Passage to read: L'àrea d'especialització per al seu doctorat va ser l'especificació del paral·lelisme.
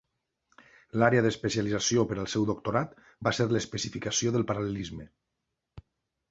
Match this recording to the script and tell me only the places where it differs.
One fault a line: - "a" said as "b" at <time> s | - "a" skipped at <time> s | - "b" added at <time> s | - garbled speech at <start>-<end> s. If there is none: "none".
none